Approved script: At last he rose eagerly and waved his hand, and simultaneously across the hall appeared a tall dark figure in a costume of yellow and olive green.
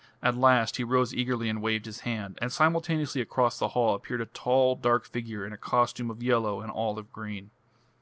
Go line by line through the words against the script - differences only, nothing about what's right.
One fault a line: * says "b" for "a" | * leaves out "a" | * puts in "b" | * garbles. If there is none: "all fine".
all fine